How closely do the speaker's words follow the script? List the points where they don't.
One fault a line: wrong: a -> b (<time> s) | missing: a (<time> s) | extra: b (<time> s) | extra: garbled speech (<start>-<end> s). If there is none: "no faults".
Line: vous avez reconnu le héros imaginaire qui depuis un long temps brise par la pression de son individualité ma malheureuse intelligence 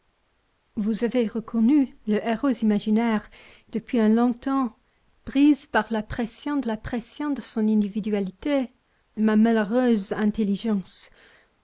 missing: qui (3.3 s)
extra: la pression de (6.7 s)